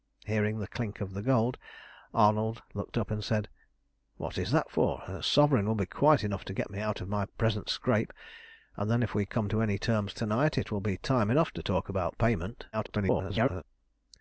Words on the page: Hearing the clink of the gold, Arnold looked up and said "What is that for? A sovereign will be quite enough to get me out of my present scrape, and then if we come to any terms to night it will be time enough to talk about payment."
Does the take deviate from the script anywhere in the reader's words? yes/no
yes